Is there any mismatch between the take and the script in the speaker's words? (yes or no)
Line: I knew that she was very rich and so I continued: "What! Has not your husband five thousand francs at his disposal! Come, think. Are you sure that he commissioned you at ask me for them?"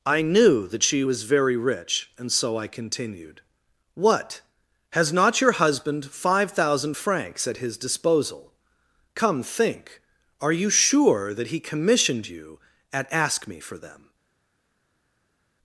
no